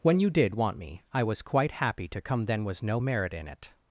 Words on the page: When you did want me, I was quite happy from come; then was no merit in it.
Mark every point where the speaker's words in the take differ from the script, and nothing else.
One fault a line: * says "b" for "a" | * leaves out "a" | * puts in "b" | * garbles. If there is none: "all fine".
* says "to" for "from"